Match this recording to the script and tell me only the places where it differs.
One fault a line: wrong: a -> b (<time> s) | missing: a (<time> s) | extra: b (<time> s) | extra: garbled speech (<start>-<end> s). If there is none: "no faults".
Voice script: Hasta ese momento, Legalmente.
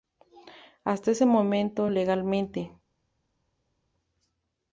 no faults